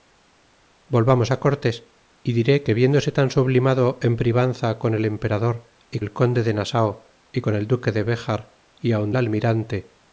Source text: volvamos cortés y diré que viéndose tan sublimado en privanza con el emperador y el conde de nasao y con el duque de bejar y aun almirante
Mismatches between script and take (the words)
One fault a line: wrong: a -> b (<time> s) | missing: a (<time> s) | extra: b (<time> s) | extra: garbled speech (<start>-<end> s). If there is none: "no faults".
no faults